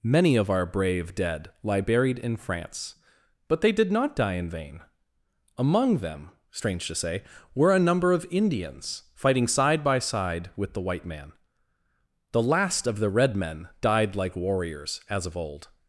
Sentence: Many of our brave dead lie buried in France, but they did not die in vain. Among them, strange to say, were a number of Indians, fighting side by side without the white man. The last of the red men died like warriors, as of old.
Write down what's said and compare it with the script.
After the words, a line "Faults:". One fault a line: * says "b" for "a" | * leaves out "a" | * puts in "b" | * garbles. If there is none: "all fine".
Many of our brave dead lie buried in France, but they did not die in vain. Among them, strange to say, were a number of Indians, fighting side by side with the white man. The last of the red men died like warriors, as of old.
Faults:
* says "with" for "without"